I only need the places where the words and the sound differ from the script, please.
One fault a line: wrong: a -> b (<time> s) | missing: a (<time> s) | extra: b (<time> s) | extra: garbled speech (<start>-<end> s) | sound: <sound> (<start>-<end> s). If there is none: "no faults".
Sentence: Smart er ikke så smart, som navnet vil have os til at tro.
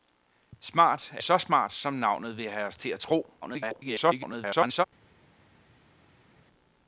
missing: ikke (1.2 s)
extra: garbled speech (3.4-4.8 s)